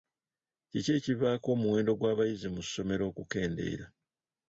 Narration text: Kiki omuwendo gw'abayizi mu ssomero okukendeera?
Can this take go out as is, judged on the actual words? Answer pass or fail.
fail